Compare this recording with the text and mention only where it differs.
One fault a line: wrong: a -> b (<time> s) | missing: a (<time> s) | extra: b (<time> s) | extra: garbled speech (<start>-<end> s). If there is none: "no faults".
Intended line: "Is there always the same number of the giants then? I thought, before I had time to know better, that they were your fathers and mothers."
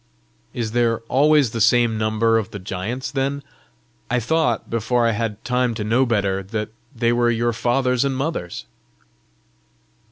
no faults